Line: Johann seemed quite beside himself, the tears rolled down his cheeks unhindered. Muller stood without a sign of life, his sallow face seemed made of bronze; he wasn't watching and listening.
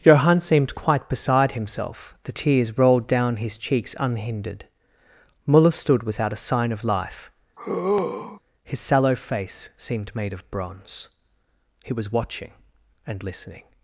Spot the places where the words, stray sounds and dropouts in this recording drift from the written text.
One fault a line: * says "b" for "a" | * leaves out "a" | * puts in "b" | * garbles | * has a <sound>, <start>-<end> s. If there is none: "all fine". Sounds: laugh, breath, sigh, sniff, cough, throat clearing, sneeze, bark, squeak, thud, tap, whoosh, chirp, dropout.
* has a sigh, 7.6-8.4 s
* says "was" for "wasn't"